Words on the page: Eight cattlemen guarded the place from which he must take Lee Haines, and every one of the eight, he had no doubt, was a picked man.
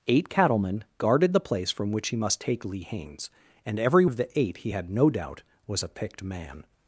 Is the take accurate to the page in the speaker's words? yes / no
no